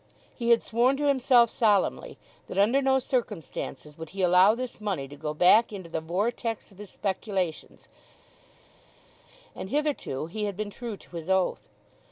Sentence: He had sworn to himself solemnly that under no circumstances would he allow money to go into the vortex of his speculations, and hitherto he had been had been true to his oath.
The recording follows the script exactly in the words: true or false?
false